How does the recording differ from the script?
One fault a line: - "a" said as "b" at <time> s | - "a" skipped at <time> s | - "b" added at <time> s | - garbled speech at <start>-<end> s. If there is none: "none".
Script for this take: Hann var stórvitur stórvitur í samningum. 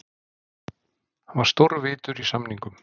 - "stórvitur" skipped at 2.2 s